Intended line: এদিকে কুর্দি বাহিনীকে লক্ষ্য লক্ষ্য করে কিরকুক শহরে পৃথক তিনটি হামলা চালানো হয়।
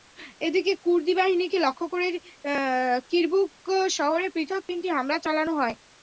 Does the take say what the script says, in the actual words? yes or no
no